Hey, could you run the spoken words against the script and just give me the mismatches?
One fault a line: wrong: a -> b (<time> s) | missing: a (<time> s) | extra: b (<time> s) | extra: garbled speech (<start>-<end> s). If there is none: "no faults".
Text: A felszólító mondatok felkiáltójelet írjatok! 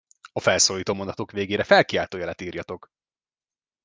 extra: végére (1.3 s)